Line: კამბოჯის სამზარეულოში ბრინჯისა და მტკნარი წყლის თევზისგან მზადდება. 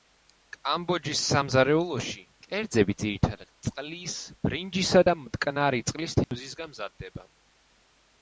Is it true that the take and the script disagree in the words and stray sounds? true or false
true